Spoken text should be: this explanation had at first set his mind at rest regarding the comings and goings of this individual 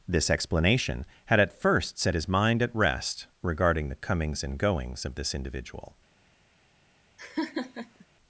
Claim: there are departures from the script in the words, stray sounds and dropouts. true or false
true